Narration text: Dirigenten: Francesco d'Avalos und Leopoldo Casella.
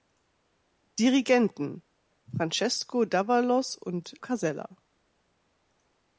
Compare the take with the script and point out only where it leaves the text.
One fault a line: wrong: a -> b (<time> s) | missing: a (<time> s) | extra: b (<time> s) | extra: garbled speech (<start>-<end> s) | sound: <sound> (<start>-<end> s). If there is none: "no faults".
missing: Leopoldo (4.2 s)